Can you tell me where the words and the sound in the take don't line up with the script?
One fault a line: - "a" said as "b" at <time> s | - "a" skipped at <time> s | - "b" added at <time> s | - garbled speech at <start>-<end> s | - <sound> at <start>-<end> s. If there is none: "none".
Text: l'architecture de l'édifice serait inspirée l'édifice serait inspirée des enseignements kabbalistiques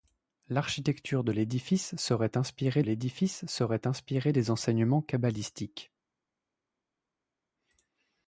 none